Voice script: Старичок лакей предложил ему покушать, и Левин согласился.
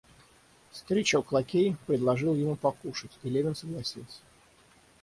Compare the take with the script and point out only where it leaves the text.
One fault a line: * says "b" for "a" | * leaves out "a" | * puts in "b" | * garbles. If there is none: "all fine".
all fine